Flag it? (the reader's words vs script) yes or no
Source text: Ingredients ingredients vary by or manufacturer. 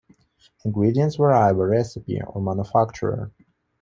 yes